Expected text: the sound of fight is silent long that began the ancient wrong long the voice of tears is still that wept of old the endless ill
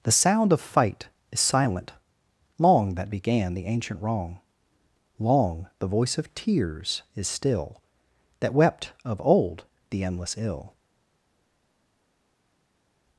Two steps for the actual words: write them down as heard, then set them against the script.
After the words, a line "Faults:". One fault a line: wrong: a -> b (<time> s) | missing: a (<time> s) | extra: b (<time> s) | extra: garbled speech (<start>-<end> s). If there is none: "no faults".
the sound of fight is silent long that began the ancient wrong long the voice of tears is still that wept of old the endless ill
Faults:
no faults